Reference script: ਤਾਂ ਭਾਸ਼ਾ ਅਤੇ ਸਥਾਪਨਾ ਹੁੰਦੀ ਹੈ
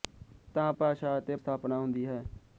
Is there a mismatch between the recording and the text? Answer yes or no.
no